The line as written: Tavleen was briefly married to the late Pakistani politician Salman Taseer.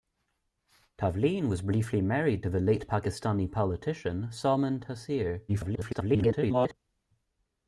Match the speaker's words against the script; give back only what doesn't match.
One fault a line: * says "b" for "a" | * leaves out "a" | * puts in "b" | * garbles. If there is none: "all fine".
* garbles